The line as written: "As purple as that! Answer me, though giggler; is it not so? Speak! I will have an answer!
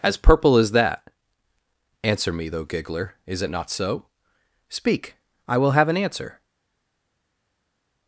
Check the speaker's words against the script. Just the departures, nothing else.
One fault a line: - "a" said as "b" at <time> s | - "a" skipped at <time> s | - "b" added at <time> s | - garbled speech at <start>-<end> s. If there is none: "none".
none